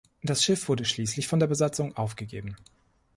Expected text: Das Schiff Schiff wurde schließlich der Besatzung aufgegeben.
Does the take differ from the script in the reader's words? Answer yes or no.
yes